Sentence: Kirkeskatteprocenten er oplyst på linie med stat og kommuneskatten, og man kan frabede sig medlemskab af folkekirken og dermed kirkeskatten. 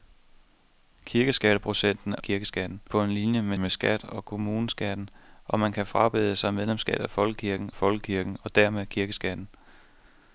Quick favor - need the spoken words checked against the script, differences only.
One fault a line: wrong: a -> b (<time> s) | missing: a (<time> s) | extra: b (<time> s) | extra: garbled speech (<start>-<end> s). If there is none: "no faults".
wrong: oplyst -> kirkeskatten (2.2 s)
extra: med (3.5 s)
extra: folkekirken (7.7 s)